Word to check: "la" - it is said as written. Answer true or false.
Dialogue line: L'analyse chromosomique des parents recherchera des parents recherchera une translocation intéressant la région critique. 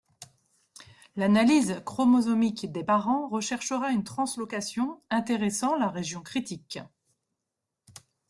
true